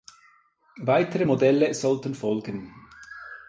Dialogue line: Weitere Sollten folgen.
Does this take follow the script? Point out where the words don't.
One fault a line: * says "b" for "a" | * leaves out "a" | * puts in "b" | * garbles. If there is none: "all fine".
* puts in "Modelle"